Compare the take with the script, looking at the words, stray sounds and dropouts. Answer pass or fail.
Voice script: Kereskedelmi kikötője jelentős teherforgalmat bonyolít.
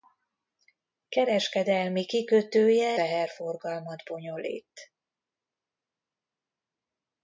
fail